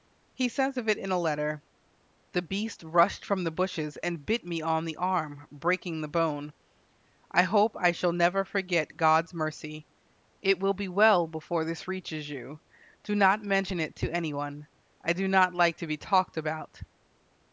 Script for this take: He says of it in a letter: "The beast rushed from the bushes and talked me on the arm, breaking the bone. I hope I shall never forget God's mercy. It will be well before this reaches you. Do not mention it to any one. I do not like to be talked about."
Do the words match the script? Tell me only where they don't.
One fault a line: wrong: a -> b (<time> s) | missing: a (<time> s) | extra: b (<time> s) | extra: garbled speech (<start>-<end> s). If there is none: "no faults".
wrong: talked -> bit (4.3 s)